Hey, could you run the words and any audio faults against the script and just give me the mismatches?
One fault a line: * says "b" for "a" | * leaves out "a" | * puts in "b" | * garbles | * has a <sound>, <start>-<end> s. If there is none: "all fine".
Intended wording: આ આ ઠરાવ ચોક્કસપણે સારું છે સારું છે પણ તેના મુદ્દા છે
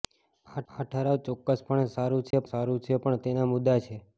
* has a dropout, 2.3-2.3 s